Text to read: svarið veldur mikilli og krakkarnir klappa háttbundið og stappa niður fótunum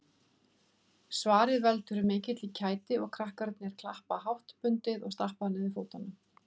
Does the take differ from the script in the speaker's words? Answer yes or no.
yes